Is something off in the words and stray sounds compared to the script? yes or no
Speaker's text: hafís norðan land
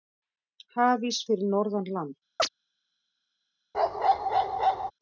yes